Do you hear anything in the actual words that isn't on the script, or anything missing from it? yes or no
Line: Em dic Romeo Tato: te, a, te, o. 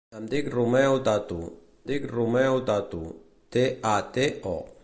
yes